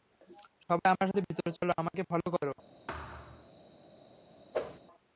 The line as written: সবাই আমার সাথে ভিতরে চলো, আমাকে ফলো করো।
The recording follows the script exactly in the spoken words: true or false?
true